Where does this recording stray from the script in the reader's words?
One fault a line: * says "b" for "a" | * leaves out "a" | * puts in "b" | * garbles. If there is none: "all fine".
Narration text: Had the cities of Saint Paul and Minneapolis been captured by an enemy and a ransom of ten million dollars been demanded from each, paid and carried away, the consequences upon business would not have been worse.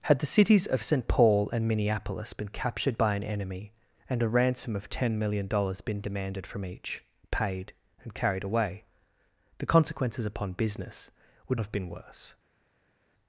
* leaves out "not"